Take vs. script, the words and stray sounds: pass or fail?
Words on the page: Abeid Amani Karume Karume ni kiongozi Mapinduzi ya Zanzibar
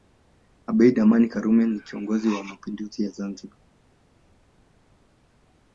fail